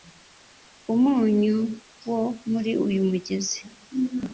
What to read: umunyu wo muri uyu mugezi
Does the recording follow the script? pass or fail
pass